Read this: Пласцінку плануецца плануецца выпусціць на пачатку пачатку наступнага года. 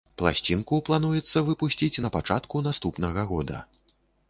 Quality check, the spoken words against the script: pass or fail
fail